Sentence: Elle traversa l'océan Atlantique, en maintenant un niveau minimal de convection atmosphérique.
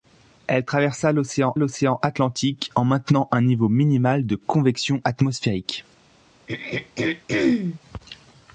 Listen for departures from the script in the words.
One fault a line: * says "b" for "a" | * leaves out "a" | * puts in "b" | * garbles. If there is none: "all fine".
* puts in "l'océan"